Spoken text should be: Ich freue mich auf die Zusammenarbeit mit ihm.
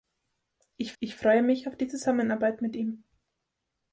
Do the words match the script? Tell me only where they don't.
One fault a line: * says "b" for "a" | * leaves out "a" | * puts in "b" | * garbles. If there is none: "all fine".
* puts in "ich"